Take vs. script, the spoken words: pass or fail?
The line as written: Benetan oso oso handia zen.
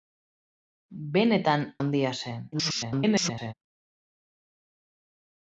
fail